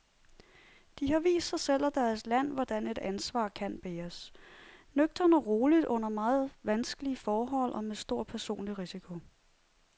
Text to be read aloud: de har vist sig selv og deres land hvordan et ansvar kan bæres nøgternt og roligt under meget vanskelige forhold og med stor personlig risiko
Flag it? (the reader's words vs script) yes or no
no